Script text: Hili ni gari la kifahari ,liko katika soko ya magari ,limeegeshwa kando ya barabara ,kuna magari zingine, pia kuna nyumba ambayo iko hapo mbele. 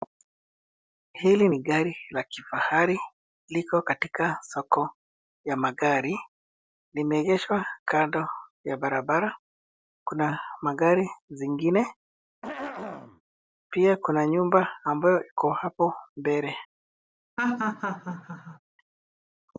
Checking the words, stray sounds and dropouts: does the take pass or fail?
fail